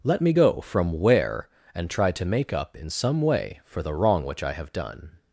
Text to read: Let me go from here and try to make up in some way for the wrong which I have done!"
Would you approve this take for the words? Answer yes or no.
no